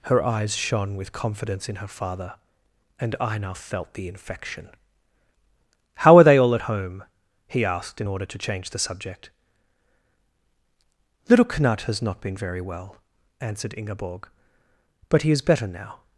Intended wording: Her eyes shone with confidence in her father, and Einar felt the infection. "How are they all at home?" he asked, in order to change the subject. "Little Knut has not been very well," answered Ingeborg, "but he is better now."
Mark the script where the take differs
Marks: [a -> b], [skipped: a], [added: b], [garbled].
Her eyes shone with confidence in her father, and Einar felt the infection. "How are they all at home?" he asked, in order to change the subject. "Little Knut has not been very well," answered Ingeborg, "but he is better now."